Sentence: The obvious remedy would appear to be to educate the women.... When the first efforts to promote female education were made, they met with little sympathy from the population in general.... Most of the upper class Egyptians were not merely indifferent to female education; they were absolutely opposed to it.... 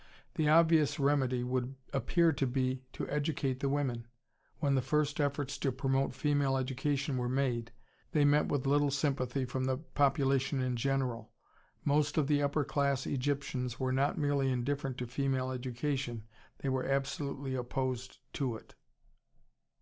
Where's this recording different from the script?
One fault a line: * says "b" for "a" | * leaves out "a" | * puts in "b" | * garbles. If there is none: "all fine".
all fine